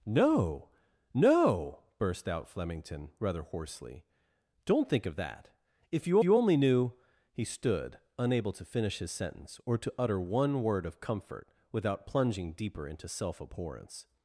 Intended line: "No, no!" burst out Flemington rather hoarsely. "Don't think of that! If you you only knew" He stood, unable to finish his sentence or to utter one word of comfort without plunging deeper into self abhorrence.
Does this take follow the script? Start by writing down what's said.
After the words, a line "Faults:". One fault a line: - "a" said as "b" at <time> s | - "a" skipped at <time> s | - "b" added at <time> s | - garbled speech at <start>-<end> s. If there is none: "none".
"No, no!" burst out Flemington rather hoarsely. "Don't think of that! If you you only knew" He stood, unable to finish his sentence or to utter one word of comfort without plunging deeper into self abhorrence.
Faults:
none